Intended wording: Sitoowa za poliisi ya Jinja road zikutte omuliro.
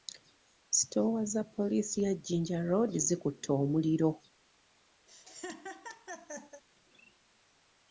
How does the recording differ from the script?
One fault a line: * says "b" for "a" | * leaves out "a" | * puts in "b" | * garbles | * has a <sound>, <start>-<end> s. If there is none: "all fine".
* has a laugh, 5.1-6.6 s